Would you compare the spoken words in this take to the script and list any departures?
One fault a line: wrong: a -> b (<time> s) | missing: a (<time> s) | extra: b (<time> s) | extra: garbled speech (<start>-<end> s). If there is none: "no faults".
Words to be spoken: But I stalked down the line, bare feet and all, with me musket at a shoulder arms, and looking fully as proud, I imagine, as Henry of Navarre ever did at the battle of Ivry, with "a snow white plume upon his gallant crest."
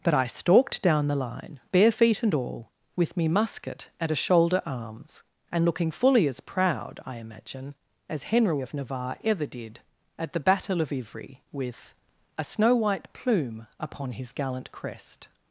no faults